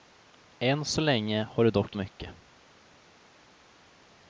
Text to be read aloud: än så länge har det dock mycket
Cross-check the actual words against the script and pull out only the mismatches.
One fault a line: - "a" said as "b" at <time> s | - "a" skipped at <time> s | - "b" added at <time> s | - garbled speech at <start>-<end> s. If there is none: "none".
none